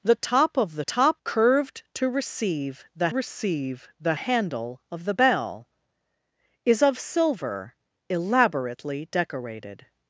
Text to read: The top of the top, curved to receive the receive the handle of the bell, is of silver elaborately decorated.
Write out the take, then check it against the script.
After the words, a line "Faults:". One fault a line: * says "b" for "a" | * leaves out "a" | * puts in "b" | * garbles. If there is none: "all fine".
The top of the top, curved to receive the receive the handle of the bell, is of silver elaborately decorated.
Faults:
all fine